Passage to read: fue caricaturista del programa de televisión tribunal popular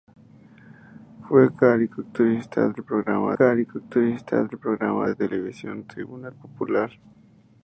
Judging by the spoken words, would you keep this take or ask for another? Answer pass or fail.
fail